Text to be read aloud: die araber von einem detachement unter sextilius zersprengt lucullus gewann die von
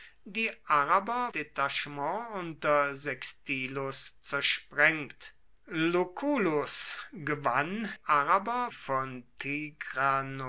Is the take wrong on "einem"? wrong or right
wrong